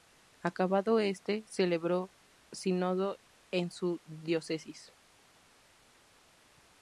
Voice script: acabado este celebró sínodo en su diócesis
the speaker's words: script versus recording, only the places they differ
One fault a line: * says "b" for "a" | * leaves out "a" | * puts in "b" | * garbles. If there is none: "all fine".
all fine